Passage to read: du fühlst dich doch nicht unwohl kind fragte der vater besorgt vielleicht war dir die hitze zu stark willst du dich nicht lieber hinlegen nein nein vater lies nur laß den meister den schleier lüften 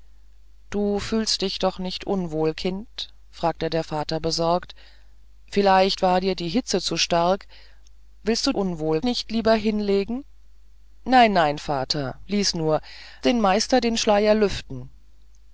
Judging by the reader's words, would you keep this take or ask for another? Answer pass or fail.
fail